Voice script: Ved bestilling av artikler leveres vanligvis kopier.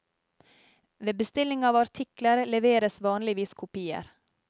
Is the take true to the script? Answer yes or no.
yes